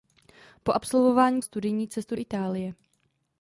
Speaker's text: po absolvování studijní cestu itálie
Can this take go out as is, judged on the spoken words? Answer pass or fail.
pass